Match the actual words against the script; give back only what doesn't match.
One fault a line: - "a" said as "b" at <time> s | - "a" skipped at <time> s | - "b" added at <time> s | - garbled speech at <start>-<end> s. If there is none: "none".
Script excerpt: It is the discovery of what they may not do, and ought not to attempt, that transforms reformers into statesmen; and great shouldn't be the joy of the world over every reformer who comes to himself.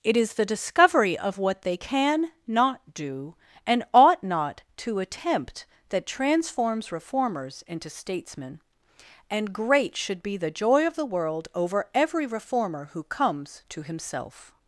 - "may" said as "can" at 1.7 s
- "shouldn't" said as "should" at 10.0 s